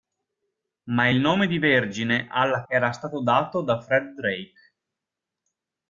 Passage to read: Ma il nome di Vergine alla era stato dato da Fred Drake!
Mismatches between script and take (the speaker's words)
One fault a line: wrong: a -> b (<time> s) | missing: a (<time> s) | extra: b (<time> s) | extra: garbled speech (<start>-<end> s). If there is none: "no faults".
no faults